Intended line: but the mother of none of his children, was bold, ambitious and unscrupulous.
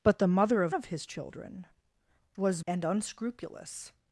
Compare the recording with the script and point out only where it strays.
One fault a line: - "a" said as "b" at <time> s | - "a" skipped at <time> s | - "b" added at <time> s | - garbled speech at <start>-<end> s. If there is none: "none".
- "none" skipped at 0.8 s
- "bold ambitious" skipped at 2.6 s